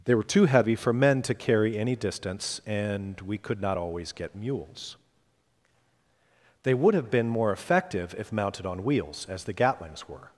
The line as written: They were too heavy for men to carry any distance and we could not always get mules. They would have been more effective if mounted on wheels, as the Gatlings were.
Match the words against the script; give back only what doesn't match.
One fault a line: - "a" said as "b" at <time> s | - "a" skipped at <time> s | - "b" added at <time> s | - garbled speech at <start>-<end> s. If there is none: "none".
none